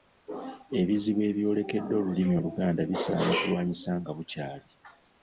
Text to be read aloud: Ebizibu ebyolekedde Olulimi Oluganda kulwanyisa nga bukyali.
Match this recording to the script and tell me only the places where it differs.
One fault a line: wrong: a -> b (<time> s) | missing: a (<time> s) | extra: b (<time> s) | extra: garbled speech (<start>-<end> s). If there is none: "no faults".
extra: bisaana (2.9 s)